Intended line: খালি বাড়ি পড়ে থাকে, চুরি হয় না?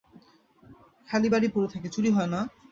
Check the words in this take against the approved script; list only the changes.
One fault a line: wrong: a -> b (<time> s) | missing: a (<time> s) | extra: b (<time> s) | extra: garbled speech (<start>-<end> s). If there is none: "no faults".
no faults